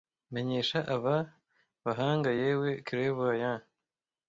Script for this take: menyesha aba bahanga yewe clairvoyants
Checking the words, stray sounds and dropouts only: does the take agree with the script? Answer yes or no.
yes